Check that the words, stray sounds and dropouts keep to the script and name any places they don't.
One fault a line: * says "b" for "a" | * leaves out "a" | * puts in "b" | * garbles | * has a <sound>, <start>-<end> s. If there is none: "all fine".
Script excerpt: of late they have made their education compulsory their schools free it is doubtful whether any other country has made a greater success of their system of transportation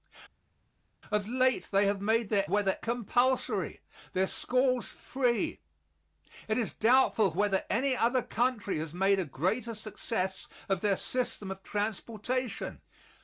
* says "whether" for "education"